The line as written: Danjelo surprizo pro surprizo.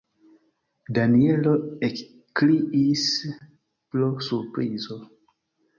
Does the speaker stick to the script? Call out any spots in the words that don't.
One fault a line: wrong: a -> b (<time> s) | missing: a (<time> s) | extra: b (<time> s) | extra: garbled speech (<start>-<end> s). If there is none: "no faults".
wrong: surprizo -> ekkriis (1.9 s)